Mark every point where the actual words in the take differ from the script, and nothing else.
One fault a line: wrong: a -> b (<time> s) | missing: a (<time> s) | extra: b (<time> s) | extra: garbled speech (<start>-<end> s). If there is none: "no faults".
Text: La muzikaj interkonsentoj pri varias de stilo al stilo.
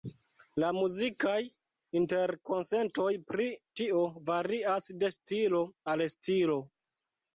extra: tio (3.8 s)